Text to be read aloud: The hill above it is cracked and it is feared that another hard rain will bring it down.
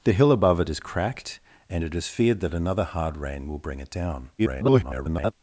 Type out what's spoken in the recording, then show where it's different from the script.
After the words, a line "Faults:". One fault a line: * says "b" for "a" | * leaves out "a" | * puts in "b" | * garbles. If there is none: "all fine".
The hill above it is cracked and it is feared that another hard rain will bring it down. [garbled]
Faults:
* garbles